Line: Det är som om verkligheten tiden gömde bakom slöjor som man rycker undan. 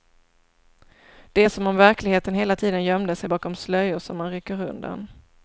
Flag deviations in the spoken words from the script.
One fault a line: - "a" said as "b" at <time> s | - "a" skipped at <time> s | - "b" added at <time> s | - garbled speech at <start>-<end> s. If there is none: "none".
- "hela" added at 2.3 s
- "sig" added at 3.1 s